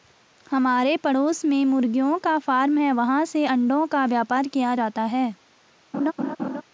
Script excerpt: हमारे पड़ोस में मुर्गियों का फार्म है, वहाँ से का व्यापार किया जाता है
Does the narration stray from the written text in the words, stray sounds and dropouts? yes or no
yes